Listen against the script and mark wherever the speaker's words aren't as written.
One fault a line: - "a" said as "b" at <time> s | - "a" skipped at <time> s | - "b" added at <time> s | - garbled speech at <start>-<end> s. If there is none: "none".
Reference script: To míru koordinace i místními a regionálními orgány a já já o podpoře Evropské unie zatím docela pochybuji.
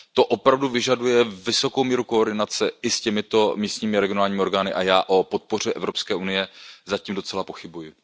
- "opravdu vyžaduje vysokou" added at 0.2 s
- "s těmito" added at 2.9 s
- "já" skipped at 5.0 s